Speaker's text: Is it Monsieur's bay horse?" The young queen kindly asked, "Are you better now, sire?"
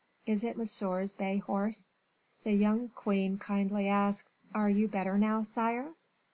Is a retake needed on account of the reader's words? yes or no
no